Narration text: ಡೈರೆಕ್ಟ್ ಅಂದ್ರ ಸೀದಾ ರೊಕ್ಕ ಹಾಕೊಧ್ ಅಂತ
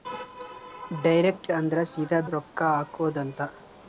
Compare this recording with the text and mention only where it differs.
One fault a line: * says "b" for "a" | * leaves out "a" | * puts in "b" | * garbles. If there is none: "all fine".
all fine